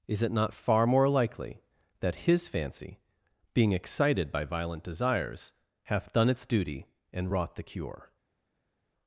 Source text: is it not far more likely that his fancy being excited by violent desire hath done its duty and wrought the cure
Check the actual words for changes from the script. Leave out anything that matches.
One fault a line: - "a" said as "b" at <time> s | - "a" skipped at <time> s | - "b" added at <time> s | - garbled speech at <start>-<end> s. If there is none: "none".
- "desire" said as "desires" at 4.8 s